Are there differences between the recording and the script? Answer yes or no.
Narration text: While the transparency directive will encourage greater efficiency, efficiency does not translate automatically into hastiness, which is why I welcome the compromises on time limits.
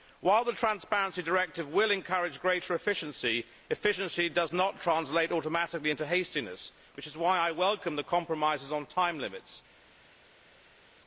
no